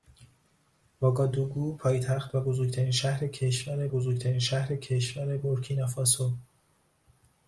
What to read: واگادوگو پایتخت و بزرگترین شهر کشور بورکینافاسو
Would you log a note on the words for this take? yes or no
yes